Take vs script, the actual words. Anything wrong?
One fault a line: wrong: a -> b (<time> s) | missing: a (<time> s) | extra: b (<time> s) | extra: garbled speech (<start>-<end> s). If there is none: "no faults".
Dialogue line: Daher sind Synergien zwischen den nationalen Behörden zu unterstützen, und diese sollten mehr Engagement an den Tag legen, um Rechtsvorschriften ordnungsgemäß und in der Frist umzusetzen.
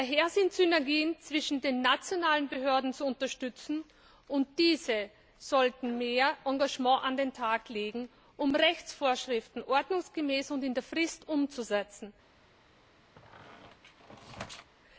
no faults